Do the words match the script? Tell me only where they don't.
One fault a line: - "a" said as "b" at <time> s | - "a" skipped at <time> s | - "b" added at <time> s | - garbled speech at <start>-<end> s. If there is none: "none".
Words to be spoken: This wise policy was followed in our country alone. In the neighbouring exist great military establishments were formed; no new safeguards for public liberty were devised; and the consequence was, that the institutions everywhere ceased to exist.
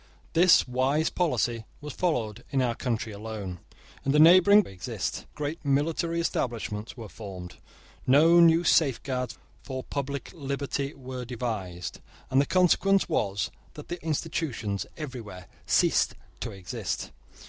none